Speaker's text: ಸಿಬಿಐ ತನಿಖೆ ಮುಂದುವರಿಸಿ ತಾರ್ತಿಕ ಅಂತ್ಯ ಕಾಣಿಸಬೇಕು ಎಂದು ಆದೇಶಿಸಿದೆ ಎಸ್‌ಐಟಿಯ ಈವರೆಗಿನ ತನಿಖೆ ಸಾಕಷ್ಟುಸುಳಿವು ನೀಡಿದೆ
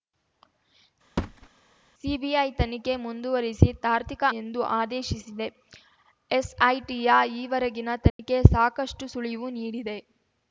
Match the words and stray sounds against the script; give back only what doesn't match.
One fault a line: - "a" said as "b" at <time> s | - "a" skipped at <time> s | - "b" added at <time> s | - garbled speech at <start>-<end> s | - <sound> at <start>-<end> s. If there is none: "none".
- thud at 1.2-1.5 s
- "ಅಂತ್ಯ ಕಾಣಿಸಬೇಕು" skipped at 4.2 s
- dropout at 8.1-8.2 s